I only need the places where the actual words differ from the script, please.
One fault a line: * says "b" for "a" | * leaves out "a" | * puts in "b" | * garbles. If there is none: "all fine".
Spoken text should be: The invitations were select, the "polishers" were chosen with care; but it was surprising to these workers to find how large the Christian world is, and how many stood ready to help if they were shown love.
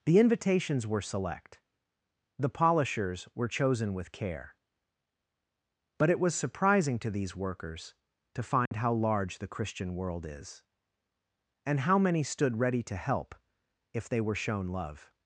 all fine